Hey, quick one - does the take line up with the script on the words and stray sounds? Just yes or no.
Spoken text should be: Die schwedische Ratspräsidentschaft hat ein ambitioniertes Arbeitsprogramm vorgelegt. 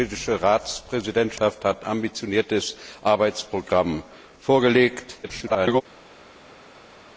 no